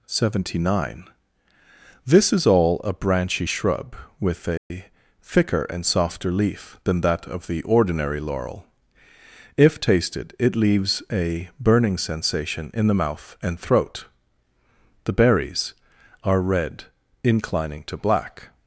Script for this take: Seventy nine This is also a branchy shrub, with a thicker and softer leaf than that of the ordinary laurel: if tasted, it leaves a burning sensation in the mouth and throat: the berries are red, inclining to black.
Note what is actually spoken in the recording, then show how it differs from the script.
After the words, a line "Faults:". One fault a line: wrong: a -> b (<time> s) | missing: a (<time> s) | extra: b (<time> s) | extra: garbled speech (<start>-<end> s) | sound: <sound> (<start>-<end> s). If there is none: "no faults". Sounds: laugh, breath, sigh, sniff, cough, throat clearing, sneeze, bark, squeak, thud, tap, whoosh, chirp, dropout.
Seventy nine This is all a branchy shrub, with a thicker and softer leaf than that of the ordinary laurel: if tasted, it leaves a burning sensation in the mouth and throat: the berries are red, inclining to black.
Faults:
wrong: also -> all (2.5 s)
sound: dropout (4.6-4.7 s)